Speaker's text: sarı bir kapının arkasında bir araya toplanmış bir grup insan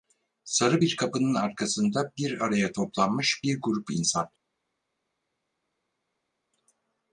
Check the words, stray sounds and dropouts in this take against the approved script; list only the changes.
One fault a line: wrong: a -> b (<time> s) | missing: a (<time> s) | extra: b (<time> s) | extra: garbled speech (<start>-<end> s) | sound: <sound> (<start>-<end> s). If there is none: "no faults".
no faults